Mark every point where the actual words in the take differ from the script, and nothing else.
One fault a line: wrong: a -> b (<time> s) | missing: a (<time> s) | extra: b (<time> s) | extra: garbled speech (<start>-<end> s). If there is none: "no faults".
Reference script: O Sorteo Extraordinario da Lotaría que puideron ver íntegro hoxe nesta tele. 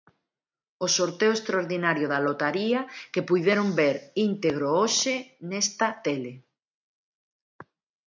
no faults